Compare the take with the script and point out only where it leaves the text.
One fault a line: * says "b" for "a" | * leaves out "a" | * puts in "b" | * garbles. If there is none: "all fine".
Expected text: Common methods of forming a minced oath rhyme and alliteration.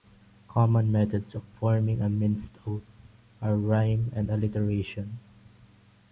* puts in "are"